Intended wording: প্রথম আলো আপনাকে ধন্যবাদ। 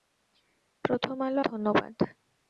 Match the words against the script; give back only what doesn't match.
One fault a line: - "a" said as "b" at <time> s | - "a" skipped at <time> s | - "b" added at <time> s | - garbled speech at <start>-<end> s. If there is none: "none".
- "আপনাকে" skipped at 1.4 s